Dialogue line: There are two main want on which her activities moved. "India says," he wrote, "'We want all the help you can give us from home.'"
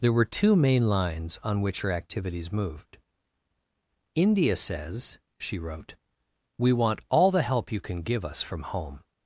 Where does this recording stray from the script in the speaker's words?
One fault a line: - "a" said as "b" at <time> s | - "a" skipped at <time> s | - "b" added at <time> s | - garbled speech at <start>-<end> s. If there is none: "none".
- "are" said as "were" at 0.1 s
- "want" said as "lines" at 0.9 s
- "he" said as "she" at 5.4 s